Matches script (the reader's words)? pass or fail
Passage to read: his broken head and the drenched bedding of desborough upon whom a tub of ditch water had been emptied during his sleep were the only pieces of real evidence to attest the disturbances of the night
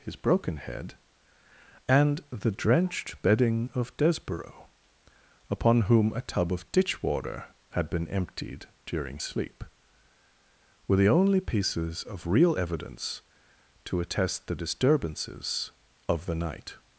fail